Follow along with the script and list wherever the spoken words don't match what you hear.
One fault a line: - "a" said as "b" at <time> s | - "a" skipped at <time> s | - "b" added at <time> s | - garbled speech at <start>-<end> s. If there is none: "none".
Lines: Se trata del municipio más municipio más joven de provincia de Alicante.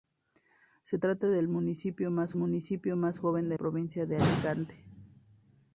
none